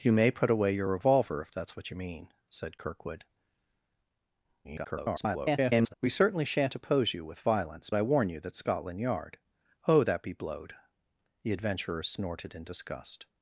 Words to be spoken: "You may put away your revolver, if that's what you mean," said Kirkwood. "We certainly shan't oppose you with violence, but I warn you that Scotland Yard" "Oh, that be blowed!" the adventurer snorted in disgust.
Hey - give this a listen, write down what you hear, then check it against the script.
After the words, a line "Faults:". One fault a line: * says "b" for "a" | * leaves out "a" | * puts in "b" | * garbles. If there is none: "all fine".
"You may put away your revolver, if that's what you mean," said Kirkwood. [garbled] "We certainly shan't oppose you with violence, I warn you that Scotland Yard" "Oh, that be blowed!" the adventurer snorted in disgust.
Faults:
* garbles
* leaves out "but"